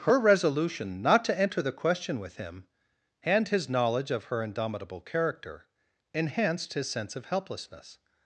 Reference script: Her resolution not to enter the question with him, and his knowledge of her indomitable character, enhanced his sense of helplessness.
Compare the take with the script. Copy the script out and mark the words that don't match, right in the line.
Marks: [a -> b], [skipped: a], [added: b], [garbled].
Her resolution not to enter the question with him, and his knowledge of her indomitable character, enhanced his sense of helplessness.